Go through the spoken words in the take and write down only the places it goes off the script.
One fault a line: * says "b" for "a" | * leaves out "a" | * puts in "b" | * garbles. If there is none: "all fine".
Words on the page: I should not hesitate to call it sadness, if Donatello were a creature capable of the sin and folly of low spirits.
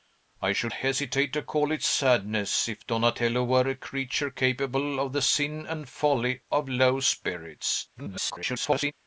* leaves out "not"
* garbles